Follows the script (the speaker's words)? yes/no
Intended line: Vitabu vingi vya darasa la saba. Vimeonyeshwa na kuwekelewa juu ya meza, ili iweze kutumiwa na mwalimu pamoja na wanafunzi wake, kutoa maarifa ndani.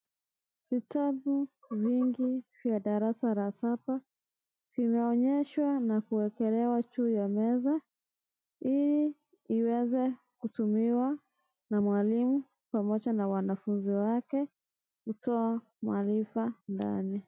yes